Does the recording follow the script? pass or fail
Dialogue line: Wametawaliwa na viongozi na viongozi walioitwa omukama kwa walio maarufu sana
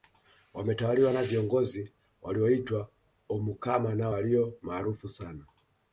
fail